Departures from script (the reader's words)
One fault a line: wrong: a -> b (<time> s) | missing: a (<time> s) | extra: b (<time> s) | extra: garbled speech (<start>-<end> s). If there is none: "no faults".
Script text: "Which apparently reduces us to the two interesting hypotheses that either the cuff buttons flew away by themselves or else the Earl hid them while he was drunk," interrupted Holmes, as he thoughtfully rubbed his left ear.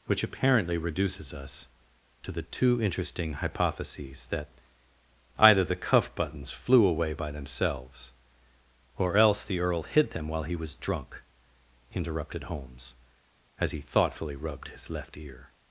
no faults